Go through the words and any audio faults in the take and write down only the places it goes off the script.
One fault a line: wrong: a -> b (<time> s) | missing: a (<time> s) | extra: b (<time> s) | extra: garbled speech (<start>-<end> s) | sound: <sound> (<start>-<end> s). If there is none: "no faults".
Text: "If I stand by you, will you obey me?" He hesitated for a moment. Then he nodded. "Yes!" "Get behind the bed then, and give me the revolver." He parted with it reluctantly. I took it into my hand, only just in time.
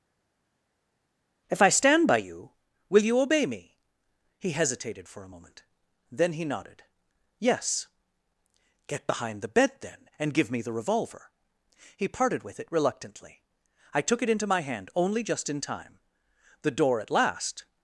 extra: The door at last (16.6 s)